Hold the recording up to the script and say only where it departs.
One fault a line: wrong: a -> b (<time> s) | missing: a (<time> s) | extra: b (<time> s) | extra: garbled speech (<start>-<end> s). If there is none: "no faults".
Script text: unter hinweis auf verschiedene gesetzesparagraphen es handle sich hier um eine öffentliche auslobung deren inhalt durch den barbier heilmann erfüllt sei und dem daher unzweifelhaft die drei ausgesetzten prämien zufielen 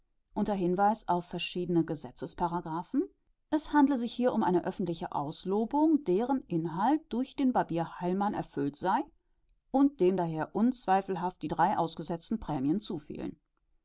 no faults